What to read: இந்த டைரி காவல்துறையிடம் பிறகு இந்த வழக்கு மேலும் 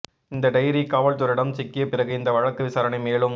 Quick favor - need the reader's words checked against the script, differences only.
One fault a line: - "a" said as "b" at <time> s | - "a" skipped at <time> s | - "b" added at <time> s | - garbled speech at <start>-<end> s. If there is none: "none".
- "சிக்கிய" added at 1.5 s
- "விசாரணை" added at 2.6 s